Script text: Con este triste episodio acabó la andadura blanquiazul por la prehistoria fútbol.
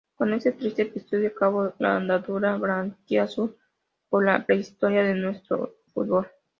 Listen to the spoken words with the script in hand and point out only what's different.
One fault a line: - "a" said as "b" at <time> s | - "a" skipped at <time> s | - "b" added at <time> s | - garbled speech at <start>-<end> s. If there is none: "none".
- "de nuestro" added at 5.0 s